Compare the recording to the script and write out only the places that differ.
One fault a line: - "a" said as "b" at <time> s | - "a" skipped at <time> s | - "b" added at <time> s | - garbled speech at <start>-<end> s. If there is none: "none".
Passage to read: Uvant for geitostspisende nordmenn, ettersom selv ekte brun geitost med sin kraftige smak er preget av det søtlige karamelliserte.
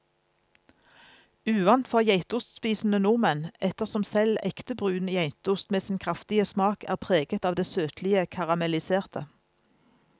none